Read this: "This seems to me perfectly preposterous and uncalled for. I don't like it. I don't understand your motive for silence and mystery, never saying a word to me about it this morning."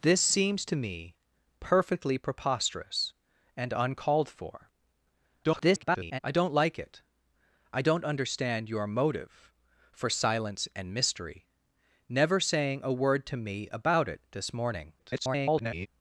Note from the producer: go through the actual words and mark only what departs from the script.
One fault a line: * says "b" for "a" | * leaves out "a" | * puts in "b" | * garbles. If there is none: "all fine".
* garbles
* garbles